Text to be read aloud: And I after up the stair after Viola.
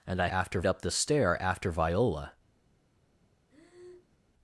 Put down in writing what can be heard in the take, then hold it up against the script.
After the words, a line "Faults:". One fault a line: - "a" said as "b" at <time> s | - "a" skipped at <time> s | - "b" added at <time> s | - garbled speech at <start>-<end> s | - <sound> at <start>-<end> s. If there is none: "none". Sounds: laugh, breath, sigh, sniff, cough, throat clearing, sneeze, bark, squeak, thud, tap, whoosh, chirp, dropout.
And I after up the stair after Viola.
Faults:
- breath at 3.5-4.2 s